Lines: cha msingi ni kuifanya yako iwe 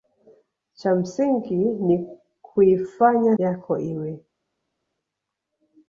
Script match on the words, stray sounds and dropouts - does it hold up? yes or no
yes